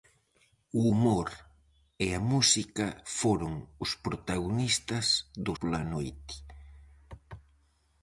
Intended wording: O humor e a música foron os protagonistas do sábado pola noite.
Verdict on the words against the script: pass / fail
fail